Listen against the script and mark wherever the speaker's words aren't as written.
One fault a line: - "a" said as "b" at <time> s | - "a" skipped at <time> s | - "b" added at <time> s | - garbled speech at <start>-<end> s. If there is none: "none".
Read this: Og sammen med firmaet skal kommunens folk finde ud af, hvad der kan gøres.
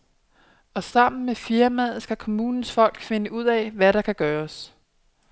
none